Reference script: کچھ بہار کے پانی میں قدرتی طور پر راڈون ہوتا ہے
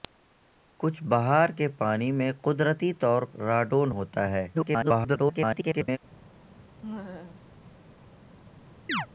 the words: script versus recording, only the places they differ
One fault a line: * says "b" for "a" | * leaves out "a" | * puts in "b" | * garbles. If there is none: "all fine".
* leaves out "پر"
* garbles